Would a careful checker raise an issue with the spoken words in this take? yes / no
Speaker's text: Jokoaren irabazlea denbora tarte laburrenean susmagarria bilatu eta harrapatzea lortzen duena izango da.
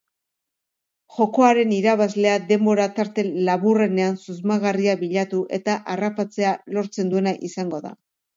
no